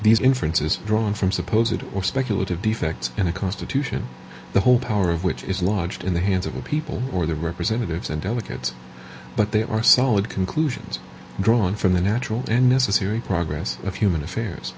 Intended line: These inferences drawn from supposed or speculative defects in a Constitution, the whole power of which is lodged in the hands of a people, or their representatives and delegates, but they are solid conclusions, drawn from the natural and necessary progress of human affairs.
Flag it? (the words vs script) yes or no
no